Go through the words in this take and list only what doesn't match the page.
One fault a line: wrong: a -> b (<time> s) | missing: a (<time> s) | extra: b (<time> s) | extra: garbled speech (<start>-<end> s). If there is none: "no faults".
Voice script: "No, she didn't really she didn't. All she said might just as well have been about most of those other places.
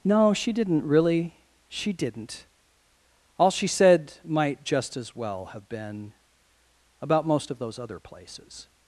no faults